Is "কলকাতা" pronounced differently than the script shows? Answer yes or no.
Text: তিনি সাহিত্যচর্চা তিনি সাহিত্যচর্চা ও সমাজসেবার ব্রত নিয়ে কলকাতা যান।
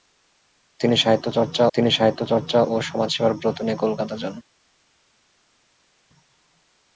no